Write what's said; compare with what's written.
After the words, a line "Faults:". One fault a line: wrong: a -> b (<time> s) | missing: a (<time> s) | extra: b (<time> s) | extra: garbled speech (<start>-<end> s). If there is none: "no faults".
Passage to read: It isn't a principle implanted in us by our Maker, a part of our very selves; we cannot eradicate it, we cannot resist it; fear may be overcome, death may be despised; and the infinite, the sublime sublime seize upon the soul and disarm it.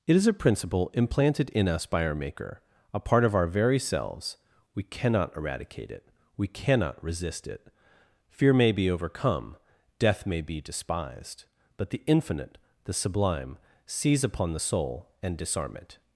It is a principle implanted in us by our Maker, a part of our very selves; we cannot eradicate it, we cannot resist it; fear may be overcome, death may be despised; but the infinite, the sublime seize upon the soul and disarm it.
Faults:
wrong: isn't -> is (0.1 s)
wrong: and -> but (11.8 s)
missing: sublime (13.6 s)